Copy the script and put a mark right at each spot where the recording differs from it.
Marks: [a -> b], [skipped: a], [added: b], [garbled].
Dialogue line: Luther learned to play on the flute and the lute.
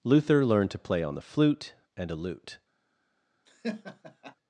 Luther learned to play on the flute and [the -> a] lute.